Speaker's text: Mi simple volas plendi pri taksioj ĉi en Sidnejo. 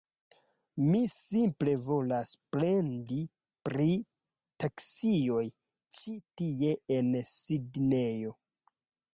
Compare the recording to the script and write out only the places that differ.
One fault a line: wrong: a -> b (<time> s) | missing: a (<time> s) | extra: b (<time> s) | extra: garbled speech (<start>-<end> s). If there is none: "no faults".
extra: tie (6.4 s)